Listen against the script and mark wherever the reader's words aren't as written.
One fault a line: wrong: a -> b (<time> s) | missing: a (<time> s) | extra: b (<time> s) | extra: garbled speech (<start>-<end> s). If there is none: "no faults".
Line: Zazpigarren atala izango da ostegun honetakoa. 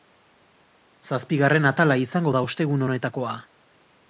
no faults